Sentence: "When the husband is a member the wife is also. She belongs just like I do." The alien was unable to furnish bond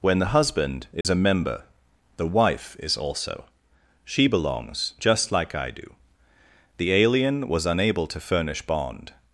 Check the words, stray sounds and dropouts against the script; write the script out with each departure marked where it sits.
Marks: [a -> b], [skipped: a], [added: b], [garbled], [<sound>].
"When the husband is [dropout] a member the wife is also. She belongs just like I do." The alien was unable to furnish bond